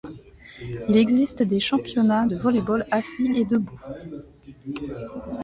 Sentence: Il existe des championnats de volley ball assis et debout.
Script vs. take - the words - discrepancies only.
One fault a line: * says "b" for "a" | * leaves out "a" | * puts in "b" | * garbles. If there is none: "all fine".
all fine